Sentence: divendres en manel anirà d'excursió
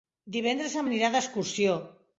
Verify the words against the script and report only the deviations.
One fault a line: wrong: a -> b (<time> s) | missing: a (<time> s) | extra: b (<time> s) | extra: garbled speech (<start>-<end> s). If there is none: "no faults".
missing: manel (0.9 s)